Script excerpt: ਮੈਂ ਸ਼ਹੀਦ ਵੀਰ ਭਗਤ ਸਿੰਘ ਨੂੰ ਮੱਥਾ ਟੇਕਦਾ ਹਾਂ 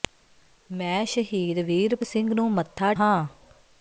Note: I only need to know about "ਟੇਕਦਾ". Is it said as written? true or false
false